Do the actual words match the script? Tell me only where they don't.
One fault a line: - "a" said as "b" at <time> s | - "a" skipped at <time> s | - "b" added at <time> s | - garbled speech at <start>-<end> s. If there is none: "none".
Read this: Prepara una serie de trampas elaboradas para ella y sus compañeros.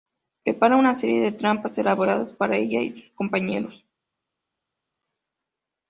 none